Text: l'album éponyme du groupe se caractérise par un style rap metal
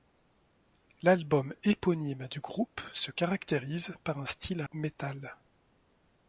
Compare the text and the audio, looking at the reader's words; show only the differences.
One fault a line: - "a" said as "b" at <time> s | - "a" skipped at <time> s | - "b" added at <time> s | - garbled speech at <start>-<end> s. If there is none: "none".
- "rap" skipped at 4.6 s